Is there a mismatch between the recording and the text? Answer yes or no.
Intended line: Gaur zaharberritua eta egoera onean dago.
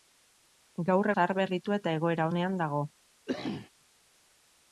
no